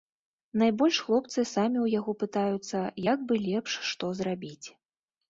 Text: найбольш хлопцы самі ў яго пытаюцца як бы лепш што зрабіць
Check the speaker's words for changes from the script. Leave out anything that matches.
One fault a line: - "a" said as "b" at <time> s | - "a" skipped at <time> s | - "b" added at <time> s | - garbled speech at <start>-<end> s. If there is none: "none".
none